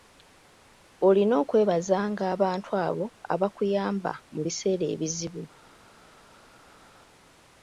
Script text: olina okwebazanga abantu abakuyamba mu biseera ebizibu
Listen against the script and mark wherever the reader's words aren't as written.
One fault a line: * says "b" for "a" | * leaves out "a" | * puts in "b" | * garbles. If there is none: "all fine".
* puts in "abo"